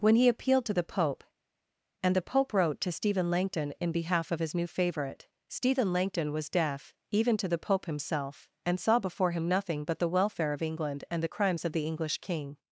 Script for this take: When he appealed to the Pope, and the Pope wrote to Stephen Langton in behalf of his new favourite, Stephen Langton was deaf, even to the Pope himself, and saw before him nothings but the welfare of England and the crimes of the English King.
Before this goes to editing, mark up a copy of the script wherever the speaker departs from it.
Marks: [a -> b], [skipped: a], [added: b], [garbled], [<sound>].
When he appealed to the Pope, and the Pope wrote to Stephen Langton in behalf of his new favourite, Stephen Langton was deaf, even to the Pope himself, and saw before him [nothings -> nothing] but the welfare of England and the crimes of the English King.